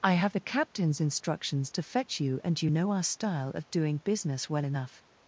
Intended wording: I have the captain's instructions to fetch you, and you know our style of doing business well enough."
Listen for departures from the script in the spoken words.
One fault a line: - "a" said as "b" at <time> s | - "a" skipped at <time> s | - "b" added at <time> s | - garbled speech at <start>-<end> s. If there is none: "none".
none